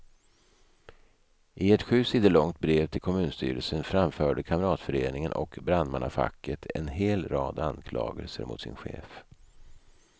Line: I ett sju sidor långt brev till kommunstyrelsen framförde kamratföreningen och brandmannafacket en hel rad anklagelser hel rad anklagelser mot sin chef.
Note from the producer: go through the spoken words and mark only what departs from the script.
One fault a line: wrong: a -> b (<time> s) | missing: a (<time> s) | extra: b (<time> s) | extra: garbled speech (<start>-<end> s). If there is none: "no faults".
missing: hel rad anklagelser (8.4 s)